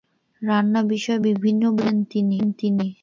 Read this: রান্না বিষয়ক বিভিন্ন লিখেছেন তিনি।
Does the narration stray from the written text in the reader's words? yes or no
no